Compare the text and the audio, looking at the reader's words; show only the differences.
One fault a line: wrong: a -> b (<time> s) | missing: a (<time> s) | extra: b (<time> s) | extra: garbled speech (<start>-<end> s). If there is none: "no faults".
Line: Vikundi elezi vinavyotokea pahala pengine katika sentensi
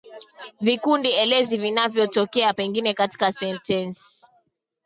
missing: pahala (2.5 s)